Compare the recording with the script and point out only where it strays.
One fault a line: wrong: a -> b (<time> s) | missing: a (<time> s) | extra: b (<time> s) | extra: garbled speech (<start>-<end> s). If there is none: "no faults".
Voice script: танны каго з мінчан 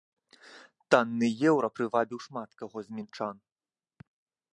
extra: еўра прывабіў шмат (1.5 s)